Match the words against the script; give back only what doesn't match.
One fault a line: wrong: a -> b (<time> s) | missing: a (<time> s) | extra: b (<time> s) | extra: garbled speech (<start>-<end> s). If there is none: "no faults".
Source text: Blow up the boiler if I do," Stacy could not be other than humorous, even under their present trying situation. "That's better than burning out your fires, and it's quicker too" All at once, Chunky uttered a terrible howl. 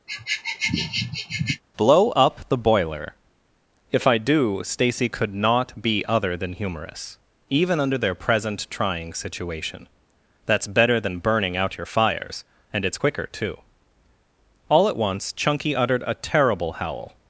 no faults